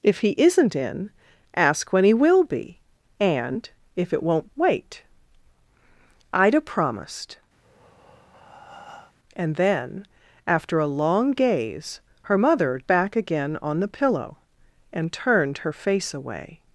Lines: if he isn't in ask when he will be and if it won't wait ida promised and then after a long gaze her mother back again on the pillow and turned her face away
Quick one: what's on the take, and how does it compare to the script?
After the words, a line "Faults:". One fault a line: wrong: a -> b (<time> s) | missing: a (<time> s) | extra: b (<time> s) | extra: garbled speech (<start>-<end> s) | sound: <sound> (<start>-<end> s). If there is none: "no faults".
if he isn't in ask when he will be and if it won't wait ida promised and then after a long gaze her mother back again on the pillow and turned her face away
Faults:
sound: breath (7.6-9.1 s)